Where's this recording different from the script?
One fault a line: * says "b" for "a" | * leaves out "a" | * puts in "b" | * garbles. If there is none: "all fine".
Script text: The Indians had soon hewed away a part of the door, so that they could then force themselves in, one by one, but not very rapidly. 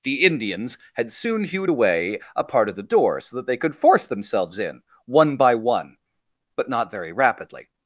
* leaves out "then"